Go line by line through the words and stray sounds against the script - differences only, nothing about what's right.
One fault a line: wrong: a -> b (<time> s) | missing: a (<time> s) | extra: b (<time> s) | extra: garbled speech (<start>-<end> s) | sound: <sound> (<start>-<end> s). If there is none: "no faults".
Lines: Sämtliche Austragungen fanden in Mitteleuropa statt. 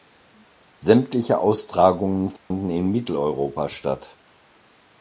sound: dropout (2.4-2.5 s)